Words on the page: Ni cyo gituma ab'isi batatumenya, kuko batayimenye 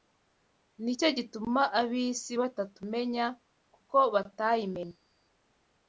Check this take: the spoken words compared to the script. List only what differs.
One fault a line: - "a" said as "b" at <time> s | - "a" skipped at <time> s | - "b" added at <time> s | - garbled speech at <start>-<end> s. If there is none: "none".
none